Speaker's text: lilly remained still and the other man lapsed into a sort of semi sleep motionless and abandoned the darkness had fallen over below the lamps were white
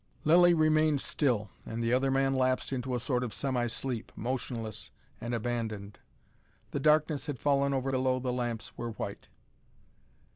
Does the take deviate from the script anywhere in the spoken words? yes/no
no